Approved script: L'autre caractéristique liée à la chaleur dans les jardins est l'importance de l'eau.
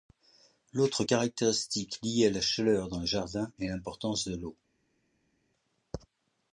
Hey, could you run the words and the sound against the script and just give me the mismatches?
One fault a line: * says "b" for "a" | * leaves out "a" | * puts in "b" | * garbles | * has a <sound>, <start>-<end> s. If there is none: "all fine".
all fine